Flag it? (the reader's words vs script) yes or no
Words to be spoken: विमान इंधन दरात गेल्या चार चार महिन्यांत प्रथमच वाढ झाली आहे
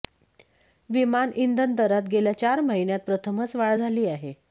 yes